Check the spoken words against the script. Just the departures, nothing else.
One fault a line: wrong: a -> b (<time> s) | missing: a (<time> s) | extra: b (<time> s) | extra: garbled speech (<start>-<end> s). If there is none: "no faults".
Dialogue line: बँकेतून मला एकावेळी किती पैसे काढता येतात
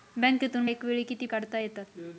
missing: मला (0.7 s)
missing: पैसे (1.3 s)